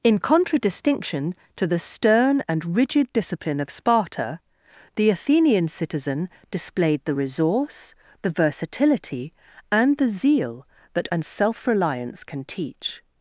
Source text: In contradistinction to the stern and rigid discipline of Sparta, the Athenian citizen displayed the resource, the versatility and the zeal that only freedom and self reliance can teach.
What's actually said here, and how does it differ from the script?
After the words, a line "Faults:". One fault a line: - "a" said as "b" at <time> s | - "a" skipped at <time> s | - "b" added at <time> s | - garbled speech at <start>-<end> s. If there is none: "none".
In contradistinction to the stern and rigid discipline of Sparta, the Athenian citizen displayed the resource, the versatility and the zeal that and self reliance can teach.
Faults:
- "only freedom" skipped at 11.1 s